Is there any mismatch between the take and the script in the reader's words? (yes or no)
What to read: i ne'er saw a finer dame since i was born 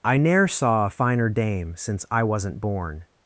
yes